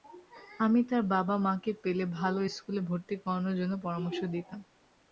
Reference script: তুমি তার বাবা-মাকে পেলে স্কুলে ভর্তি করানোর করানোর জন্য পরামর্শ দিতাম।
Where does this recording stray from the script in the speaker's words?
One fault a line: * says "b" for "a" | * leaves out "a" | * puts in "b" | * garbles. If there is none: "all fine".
* says "আমি" for "তুমি"
* puts in "ভালো"
* leaves out "করানোর"